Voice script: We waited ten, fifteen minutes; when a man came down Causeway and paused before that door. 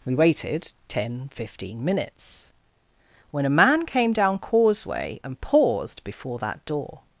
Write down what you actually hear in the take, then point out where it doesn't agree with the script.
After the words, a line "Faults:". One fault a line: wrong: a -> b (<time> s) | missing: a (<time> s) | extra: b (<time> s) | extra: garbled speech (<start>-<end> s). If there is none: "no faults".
We waited ten, fifteen minutes; when a man came down Causeway and paused before that door.
Faults:
no faults